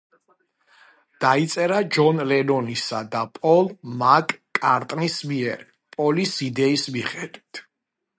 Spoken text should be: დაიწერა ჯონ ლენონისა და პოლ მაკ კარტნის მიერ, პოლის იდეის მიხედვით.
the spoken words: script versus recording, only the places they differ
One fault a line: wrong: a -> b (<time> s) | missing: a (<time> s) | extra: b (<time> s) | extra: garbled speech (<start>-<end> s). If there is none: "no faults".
no faults